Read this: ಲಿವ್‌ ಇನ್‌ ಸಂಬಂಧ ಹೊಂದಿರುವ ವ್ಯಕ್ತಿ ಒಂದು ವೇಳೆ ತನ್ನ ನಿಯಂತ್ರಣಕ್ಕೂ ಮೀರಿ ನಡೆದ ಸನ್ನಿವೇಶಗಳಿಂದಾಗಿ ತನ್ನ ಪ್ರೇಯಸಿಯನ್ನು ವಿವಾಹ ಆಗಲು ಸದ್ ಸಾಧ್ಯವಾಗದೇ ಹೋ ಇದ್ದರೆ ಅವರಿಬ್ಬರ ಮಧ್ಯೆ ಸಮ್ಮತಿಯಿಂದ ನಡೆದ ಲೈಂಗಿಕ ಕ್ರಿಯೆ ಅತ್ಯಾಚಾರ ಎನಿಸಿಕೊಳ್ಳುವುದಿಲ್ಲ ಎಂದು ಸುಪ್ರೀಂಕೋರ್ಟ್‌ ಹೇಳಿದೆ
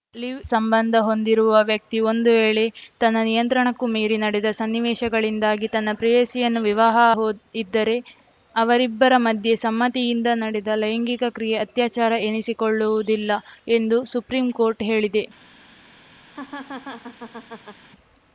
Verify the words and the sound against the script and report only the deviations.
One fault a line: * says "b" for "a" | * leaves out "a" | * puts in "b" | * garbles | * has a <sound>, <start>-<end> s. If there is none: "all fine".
* leaves out "ಇನ್"
* leaves out "ಆಗಲು ಸದ್ ಸಾಧ್ಯವಾಗದೇ"
* has a laugh, 16.3-17.8 s